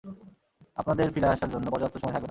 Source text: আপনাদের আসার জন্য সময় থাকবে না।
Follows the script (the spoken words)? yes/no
no